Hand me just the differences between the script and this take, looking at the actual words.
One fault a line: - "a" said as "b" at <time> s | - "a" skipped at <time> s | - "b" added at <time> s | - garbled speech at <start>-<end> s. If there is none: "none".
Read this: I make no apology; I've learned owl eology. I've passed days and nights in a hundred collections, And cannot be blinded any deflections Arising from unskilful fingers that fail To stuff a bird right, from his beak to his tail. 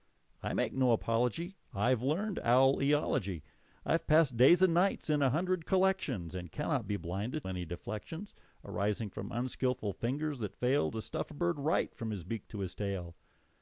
none